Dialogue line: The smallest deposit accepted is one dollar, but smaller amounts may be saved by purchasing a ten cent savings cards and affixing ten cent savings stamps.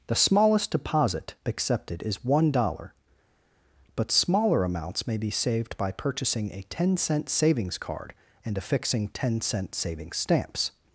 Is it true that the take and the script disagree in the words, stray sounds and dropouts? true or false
true